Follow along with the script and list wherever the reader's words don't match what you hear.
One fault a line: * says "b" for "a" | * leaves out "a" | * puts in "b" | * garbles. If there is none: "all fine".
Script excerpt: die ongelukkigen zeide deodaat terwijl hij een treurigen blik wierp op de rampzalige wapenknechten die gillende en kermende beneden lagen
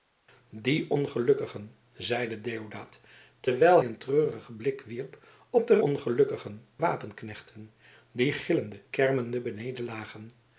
* leaves out "hij"
* says "ongelukkigen" for "rampzalige"
* leaves out "en"